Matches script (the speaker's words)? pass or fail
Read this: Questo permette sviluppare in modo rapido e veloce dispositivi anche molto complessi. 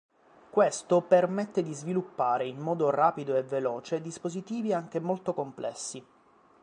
fail